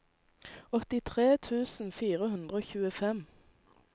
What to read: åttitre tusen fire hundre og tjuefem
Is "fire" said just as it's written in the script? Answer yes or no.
yes